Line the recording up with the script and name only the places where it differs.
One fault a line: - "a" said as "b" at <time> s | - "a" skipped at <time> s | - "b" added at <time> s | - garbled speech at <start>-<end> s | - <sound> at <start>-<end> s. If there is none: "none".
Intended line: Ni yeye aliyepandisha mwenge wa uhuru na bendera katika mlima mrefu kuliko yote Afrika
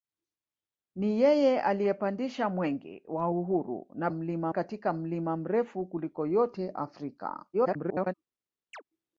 - "bendera" said as "mlima" at 4.1 s
- garbled speech at 7.5-8.1 s
- chirp at 8.7-8.8 s